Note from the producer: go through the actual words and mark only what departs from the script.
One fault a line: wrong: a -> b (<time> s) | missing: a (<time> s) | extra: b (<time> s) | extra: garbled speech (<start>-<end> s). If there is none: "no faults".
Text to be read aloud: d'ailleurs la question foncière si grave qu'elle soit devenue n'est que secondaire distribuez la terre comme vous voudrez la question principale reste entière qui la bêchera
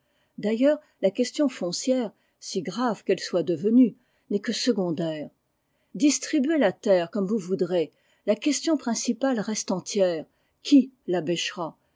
no faults